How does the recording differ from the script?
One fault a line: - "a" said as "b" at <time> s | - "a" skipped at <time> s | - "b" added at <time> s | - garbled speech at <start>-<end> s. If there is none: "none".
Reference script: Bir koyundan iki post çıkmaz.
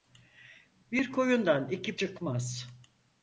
- "post" skipped at 2.0 s